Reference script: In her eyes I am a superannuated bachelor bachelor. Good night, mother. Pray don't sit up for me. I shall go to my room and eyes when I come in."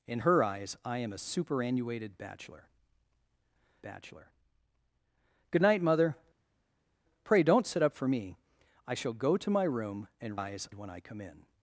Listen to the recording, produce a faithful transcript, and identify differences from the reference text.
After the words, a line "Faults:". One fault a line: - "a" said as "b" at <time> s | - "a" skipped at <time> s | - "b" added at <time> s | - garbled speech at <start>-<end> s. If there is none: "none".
In her eyes I am a superannuated bachelor bachelor. Good night, mother. Pray don't sit up for me. I shall go to my room and eyes when I come in."
Faults:
none